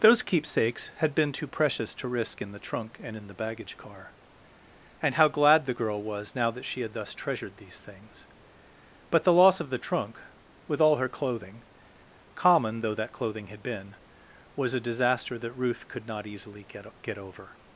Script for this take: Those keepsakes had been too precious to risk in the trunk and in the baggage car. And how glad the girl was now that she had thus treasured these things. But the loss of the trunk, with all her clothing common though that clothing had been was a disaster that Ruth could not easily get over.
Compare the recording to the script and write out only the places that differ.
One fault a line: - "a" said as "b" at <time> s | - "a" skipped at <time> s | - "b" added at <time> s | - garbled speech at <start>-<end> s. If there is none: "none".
- "get" added at 17.0 s